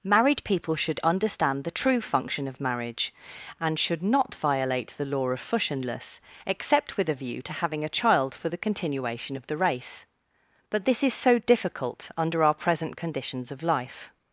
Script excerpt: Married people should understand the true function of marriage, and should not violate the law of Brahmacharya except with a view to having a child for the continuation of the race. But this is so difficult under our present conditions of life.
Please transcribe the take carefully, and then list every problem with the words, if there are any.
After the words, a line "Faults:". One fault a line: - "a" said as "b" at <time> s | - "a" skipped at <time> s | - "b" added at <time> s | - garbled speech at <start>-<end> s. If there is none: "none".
Married people should understand the true function of marriage, and should not violate the law of Fushionless except with a view to having a child for the continuation of the race. But this is so difficult under our present conditions of life.
Faults:
- "Brahmacharya" said as "Fushionless" at 5.4 s